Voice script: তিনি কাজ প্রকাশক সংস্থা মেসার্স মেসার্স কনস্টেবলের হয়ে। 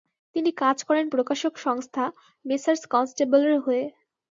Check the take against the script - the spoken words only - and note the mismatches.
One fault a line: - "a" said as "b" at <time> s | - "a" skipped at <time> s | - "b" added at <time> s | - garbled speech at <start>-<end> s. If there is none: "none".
- "করেন" added at 0.9 s
- "মেসার্স" skipped at 2.8 s